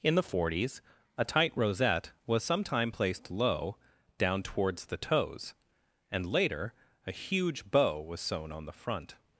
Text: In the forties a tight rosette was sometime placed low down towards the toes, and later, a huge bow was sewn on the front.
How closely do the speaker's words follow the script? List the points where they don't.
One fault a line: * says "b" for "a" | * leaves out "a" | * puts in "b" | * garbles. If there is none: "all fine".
all fine